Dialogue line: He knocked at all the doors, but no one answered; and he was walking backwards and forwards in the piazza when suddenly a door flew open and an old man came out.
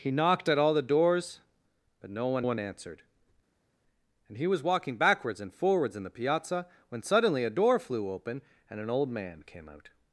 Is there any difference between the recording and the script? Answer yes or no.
yes